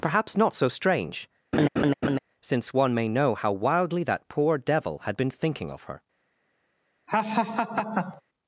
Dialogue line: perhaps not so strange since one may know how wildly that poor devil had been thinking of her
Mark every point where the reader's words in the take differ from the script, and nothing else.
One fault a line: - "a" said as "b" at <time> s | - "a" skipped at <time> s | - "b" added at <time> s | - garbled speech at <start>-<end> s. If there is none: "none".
none